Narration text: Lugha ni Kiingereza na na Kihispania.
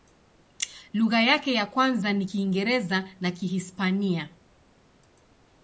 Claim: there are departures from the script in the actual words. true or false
true